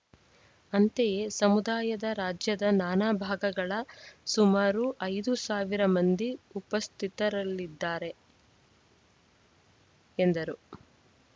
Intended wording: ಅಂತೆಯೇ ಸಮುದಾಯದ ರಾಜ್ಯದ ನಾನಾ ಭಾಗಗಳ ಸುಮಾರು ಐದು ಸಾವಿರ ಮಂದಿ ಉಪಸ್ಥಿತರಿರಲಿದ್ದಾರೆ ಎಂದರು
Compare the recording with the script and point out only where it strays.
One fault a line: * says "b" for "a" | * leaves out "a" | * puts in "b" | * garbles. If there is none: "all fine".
all fine